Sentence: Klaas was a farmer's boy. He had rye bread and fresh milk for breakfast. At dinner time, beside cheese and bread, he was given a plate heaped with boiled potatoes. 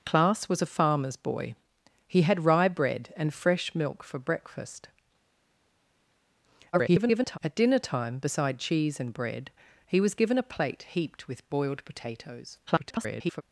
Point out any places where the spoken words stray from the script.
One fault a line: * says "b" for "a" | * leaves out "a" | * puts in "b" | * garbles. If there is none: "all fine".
* garbles
* garbles